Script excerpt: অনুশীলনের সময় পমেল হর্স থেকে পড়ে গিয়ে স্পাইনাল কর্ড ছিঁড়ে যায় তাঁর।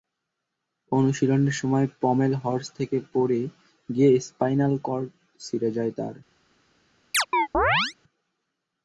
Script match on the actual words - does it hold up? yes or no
yes